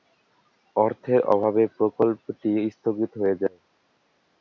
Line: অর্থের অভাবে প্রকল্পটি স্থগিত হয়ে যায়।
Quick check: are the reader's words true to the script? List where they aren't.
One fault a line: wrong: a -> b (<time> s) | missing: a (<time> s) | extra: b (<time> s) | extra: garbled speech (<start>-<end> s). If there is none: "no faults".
no faults